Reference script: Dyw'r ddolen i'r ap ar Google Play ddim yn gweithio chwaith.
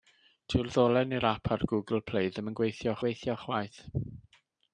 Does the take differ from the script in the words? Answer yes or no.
yes